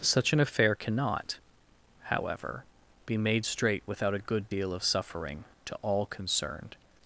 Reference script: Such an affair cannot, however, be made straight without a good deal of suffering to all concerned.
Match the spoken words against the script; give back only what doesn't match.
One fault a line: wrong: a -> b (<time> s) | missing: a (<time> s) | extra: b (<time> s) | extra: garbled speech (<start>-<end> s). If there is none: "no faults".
no faults